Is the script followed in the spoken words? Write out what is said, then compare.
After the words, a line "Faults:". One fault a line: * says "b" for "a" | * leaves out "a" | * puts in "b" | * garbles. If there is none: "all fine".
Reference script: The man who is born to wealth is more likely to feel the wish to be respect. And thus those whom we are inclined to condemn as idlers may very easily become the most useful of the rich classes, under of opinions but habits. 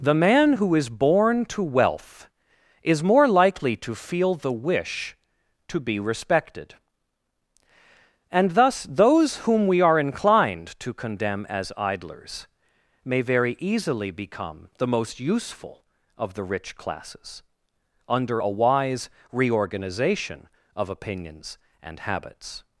The man who is born to wealth is more likely to feel the wish to be respected. And thus those whom we are inclined to condemn as idlers may very easily become the most useful of the rich classes, under a wise reorganization of opinions and habits.
Faults:
* says "respected" for "respect"
* puts in "a wise reorganization"
* says "and" for "but"